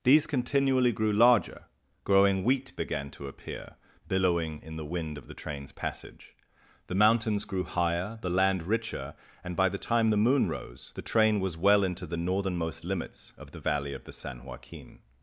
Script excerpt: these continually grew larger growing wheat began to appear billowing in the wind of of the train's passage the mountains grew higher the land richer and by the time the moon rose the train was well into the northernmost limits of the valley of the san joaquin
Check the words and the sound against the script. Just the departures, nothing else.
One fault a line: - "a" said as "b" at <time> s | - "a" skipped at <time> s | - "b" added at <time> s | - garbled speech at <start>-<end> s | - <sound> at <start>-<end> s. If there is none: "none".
- "of" skipped at 5.3 s